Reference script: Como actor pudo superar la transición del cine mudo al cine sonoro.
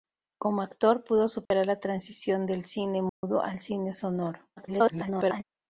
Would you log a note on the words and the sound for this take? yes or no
yes